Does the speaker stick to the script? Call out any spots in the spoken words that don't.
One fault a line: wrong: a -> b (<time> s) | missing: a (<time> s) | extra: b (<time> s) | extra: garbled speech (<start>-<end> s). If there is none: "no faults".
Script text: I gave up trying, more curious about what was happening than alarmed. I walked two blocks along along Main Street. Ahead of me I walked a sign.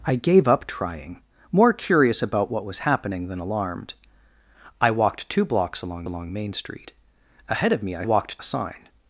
no faults